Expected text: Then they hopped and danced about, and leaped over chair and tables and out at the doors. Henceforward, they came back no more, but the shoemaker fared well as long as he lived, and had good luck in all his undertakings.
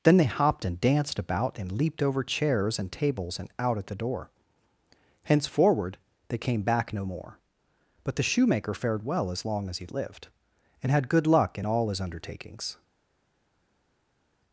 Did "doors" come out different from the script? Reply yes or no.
yes